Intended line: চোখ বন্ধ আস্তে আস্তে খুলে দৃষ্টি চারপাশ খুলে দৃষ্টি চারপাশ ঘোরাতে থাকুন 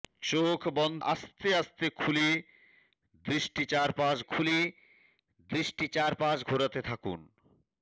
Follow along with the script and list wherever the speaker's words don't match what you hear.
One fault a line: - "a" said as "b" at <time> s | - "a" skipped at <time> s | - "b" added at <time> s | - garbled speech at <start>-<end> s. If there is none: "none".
none